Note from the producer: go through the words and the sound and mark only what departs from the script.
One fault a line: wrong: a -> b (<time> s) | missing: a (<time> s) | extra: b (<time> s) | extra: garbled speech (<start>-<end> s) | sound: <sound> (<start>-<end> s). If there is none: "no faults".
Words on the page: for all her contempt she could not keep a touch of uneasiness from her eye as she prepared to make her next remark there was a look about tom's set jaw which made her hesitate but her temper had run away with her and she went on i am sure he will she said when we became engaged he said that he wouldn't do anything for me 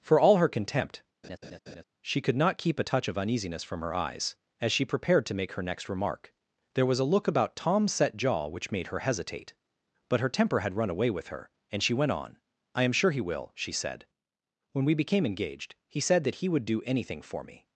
sound: laugh (1.2-1.8 s)
wrong: eye -> eyes (3.9 s)
wrong: wouldn't -> would (16.5 s)